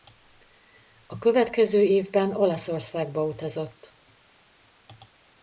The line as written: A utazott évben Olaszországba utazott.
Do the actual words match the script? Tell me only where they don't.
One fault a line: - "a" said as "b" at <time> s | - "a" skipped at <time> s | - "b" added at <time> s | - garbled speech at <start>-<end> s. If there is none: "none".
- "utazott" said as "következő" at 1.2 s